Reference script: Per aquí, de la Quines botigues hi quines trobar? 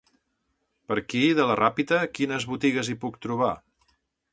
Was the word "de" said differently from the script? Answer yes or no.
no